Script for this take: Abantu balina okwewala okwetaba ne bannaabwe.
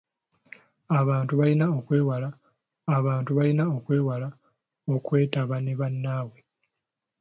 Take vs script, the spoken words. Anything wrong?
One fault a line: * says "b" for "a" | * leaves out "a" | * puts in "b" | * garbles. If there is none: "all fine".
* puts in "abantu balina okwewala"